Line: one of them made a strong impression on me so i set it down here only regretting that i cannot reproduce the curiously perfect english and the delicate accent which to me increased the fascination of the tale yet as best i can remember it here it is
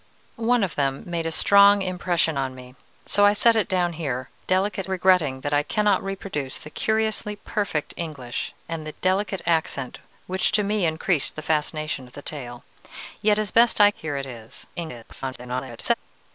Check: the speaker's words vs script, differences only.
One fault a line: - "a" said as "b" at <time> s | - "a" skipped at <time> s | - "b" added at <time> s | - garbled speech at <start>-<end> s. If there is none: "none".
- "only" said as "delicate" at 4.4 s
- "can remember it" skipped at 13.9 s
- garbled speech at 14.8-15.9 s